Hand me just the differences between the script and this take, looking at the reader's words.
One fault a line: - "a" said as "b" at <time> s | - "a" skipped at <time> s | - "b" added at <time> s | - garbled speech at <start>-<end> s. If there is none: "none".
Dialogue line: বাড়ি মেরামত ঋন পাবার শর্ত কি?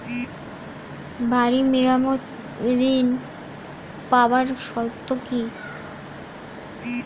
none